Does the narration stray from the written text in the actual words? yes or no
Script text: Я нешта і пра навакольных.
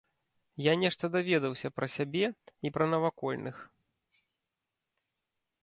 yes